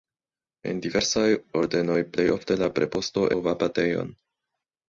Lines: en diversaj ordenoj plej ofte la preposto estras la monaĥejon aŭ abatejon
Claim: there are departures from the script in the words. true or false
true